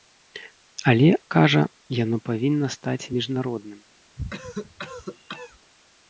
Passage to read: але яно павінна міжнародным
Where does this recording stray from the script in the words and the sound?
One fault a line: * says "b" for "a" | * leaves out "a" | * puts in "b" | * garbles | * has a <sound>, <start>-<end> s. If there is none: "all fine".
* puts in "кажа"
* puts in "стаць"
* has a cough, 4.2-5.6 s